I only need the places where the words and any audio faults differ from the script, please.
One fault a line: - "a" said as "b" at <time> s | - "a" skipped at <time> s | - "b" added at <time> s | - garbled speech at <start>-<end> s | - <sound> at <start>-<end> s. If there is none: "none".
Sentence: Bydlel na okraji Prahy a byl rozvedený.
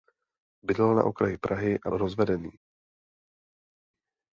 - "byl" skipped at 1.9 s